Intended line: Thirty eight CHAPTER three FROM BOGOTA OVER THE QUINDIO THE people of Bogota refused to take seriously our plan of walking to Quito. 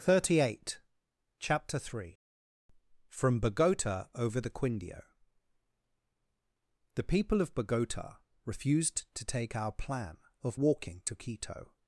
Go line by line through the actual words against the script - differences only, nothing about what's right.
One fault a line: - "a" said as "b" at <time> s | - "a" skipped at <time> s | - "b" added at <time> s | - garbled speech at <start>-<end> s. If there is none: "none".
- "seriously" skipped at 9.6 s